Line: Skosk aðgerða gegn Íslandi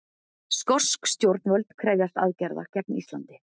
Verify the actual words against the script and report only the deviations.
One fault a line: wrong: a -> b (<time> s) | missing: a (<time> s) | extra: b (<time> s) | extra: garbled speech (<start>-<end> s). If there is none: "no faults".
extra: stjórnvöld krefjast (1.1 s)